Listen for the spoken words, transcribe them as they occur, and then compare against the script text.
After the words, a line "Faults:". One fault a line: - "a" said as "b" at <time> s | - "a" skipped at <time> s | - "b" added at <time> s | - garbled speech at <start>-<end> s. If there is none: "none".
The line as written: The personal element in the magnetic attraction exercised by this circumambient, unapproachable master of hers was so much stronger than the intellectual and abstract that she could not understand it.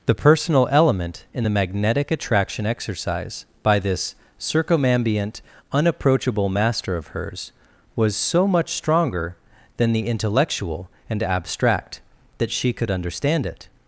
The personal element in the magnetic attraction exercise by this circumambient, unapproachable master of hers was so much stronger than the intellectual and abstract that she could understand it.
Faults:
- "exercised" said as "exercise" at 2.6 s
- "not" skipped at 12.9 s